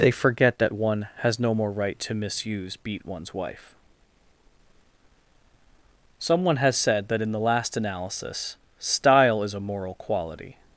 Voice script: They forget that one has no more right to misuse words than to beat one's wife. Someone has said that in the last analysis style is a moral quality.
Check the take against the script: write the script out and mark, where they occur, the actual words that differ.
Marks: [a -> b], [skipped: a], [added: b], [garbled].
They forget that one has no more right to misuse [skipped: words than to] beat one's wife. Someone has said that in the last analysis style is a moral quality.